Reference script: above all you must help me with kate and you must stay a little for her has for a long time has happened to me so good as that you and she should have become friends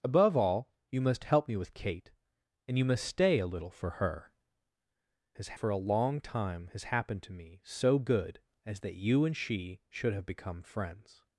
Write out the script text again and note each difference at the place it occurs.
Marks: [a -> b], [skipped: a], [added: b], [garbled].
above all you must help me with kate and you must stay a little for her has for a long time has happened to me so good as that you and she should have become friends